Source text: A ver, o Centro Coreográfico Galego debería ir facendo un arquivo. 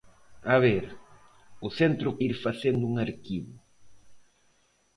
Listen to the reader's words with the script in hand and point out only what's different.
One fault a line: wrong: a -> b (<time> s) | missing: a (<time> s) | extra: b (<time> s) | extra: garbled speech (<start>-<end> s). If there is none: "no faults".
missing: Coreográfico Galego debería (2.1 s)